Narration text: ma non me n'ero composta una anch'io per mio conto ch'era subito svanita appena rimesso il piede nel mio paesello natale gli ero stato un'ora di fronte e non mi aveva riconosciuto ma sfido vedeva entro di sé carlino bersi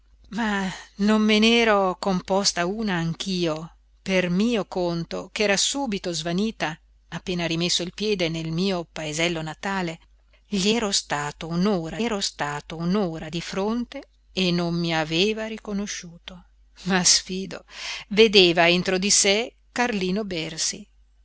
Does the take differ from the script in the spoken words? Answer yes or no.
yes